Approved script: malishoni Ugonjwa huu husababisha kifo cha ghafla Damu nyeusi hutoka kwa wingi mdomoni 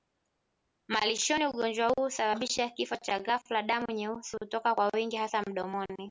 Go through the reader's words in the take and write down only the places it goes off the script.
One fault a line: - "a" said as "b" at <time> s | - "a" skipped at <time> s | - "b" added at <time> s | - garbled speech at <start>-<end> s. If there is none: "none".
- "hasa" added at 5.2 s